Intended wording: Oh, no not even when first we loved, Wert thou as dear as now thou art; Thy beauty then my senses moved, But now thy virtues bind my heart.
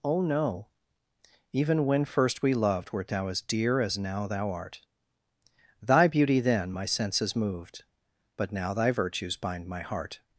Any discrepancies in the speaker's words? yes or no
yes